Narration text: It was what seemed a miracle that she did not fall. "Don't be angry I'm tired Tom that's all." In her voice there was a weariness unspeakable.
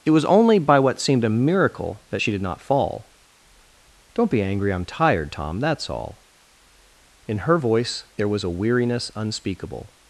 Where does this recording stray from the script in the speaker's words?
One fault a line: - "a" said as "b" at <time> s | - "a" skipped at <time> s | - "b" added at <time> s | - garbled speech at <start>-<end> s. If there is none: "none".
- "only by" added at 0.2 s